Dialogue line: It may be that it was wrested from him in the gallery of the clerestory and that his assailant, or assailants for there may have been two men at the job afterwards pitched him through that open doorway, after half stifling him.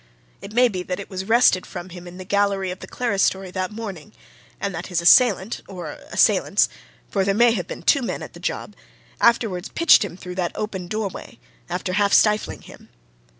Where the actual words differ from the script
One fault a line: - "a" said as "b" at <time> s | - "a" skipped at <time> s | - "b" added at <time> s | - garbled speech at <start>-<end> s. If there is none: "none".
- "that morning" added at 3.5 s